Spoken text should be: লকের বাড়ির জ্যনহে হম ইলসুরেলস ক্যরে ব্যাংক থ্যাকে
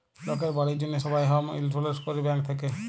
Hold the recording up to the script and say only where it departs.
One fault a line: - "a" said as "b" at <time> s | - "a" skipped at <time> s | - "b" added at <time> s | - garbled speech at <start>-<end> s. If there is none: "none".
- "সবাই" added at 1.0 s